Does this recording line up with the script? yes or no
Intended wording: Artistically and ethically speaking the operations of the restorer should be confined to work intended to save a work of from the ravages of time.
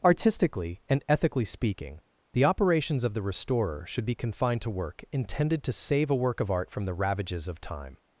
no